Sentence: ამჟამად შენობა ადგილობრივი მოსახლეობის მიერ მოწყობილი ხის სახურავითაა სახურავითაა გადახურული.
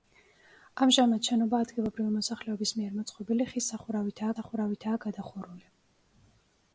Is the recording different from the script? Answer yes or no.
no